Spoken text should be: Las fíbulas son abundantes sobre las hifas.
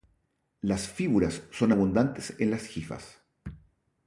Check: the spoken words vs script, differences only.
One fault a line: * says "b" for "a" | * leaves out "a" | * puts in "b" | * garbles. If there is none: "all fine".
* says "en" for "sobre"